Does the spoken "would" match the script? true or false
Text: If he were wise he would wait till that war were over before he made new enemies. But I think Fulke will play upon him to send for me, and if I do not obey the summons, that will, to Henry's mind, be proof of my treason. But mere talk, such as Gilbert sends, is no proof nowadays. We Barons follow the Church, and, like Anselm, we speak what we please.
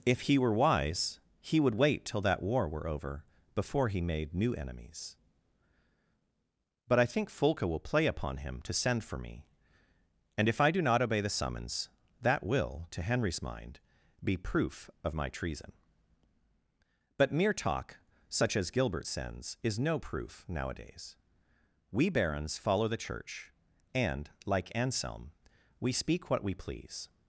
true